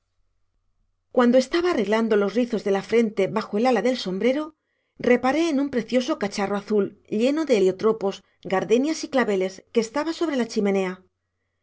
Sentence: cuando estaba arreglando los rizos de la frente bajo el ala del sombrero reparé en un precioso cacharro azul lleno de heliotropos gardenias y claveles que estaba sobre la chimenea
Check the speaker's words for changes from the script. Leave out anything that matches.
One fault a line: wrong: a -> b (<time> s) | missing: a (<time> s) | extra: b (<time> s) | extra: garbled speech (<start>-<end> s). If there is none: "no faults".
no faults